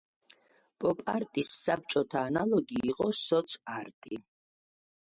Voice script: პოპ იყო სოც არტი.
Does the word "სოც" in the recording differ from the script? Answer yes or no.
no